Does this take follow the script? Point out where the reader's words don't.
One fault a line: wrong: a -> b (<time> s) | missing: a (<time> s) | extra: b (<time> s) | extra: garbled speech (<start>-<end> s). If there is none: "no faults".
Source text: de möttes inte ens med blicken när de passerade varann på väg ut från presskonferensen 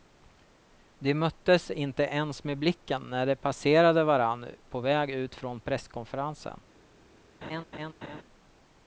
no faults